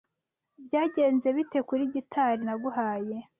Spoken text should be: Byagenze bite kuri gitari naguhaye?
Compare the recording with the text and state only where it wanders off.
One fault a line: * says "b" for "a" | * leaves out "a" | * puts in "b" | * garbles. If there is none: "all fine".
all fine